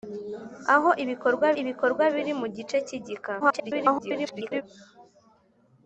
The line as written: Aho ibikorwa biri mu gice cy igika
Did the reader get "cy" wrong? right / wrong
right